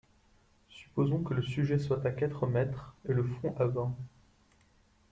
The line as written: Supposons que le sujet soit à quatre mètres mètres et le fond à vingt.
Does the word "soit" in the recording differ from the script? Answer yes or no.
no